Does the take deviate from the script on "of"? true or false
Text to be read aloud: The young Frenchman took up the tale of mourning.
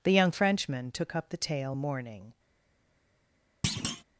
true